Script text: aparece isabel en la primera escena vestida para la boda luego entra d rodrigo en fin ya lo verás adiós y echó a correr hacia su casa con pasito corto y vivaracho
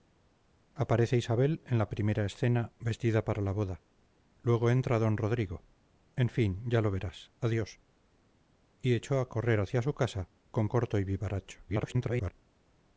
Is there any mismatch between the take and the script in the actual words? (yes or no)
yes